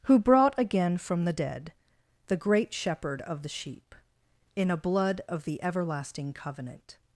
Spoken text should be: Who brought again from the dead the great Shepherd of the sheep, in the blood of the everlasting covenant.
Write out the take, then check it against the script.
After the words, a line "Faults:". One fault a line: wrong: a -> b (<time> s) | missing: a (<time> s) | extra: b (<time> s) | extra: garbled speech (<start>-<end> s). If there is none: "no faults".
Who brought again from the dead the great Shepherd of the sheep, in a blood of the everlasting covenant.
Faults:
wrong: the -> a (4.7 s)